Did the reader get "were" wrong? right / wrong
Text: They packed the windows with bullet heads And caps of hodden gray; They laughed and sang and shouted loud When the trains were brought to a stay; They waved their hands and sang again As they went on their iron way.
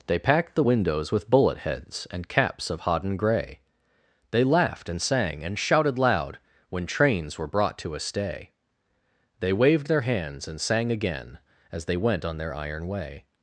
right